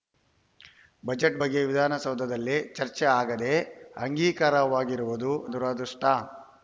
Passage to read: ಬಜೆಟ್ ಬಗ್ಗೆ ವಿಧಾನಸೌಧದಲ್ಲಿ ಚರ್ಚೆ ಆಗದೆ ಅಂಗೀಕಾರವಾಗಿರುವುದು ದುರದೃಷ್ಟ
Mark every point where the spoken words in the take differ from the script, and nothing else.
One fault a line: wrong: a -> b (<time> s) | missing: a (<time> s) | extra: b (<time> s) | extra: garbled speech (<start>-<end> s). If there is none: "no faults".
no faults